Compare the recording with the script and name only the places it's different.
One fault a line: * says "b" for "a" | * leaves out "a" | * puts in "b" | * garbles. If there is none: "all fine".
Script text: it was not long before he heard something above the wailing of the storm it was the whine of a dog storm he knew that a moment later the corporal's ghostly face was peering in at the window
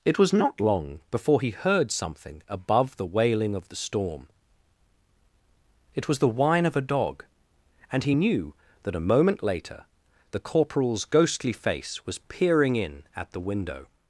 * says "and" for "storm"